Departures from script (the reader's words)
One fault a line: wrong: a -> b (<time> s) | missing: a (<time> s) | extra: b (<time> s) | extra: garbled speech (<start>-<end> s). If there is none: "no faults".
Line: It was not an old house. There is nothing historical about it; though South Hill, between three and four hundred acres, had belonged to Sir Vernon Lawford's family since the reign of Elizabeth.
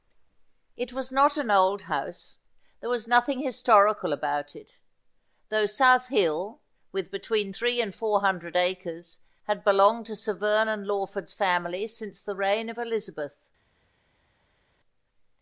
wrong: is -> was (2.9 s)
extra: with (6.9 s)